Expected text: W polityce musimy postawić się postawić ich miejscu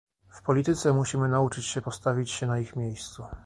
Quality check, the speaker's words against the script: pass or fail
fail